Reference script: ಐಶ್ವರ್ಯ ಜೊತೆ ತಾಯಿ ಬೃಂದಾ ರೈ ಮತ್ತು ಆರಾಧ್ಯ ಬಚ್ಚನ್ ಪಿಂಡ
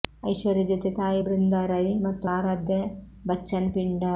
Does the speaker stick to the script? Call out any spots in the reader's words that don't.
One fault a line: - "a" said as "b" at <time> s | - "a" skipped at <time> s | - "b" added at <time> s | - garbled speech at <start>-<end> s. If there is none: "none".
none